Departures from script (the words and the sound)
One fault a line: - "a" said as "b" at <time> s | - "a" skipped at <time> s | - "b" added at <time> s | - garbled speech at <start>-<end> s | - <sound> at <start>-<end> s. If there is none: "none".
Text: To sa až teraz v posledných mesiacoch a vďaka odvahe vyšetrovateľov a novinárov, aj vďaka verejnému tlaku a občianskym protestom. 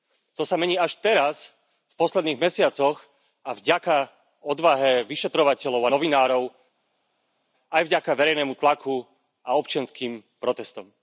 - "mení" added at 0.6 s